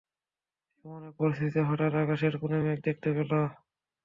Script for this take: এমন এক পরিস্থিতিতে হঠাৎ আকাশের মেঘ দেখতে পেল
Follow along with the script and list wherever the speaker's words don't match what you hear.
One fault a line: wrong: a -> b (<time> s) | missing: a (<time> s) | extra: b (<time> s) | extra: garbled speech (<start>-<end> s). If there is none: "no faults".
extra: কোণে (2.4 s)